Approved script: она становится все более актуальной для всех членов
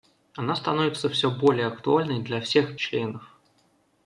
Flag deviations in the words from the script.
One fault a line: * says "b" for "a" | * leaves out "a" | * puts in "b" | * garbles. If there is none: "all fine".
all fine